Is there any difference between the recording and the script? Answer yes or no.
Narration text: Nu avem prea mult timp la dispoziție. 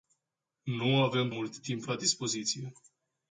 yes